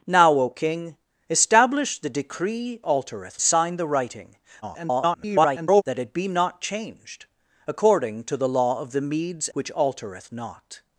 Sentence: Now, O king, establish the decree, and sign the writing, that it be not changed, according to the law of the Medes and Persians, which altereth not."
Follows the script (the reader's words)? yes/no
no